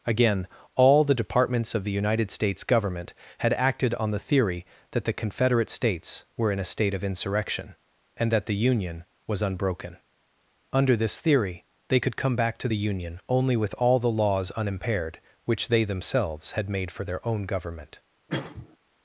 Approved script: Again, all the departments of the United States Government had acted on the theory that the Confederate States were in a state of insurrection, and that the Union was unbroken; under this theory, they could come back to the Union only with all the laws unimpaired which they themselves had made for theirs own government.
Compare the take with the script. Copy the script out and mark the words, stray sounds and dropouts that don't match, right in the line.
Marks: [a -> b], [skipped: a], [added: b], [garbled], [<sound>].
Again, all the departments of the United States Government had acted on the theory that the Confederate States were in a state of insurrection, and that the Union was unbroken; under this theory, they could come back to the Union only with all the laws unimpaired which they themselves had made for [theirs -> their] own government. [cough]